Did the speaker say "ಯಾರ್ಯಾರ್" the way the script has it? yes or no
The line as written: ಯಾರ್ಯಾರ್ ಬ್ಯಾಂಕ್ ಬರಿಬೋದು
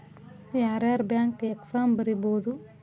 yes